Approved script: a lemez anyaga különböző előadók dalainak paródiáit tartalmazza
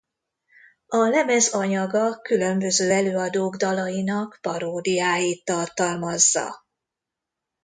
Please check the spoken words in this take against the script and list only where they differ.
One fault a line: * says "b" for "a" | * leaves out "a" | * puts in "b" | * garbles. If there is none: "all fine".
all fine